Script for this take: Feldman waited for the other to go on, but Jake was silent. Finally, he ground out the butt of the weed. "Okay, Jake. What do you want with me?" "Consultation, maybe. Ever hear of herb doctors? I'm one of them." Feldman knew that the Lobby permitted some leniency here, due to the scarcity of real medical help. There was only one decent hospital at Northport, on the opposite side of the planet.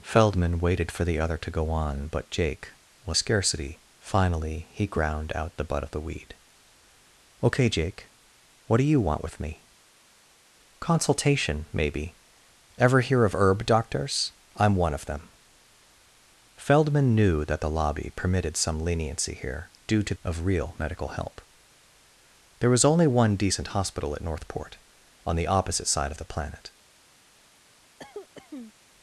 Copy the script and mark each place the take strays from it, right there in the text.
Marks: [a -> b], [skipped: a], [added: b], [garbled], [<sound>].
Feldman waited for the other to go on, but Jake was [silent. -> scarcity] Finally, he ground out the butt of the weed. "Okay, Jake. What do you want with me?" "Consultation, maybe. Ever hear of herb doctors? I'm one of them." Feldman knew that the Lobby permitted some leniency here, due to [skipped: the scarcity] of real medical help. There was only one decent hospital at Northport, on the opposite side of the planet. [cough]